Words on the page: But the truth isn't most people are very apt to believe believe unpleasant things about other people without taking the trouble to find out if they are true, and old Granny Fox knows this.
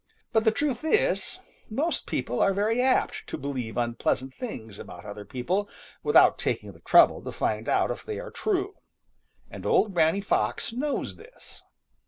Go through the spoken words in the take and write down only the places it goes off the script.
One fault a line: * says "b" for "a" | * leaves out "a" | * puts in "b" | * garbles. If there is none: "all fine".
* says "is" for "isn't"
* leaves out "believe"